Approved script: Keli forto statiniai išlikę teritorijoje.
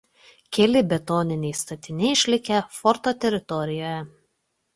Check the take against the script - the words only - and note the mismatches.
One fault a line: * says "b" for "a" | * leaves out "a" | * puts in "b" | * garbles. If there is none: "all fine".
* says "betoniniai" for "forto"
* puts in "forto"